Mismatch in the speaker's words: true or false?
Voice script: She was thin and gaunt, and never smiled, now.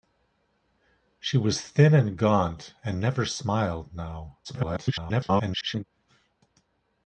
true